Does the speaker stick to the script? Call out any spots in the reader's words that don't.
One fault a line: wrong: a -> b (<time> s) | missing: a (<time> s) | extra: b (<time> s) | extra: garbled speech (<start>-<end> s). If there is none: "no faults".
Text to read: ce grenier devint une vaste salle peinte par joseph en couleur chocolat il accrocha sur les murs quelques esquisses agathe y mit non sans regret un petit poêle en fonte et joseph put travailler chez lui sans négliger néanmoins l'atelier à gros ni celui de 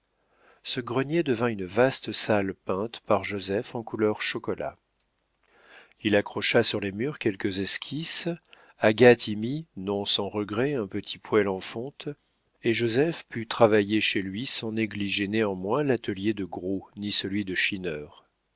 wrong: à -> de (16.3 s)